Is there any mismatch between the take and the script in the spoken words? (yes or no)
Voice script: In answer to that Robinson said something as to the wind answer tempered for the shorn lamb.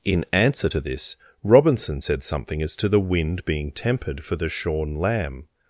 yes